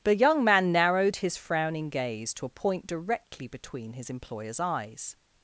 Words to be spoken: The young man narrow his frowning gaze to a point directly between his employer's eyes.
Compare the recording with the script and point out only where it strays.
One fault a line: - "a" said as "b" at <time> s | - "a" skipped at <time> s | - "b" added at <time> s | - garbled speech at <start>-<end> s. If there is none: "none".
- "narrow" said as "narrowed" at 0.7 s